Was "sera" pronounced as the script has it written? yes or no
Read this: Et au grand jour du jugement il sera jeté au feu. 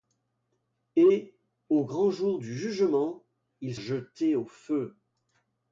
no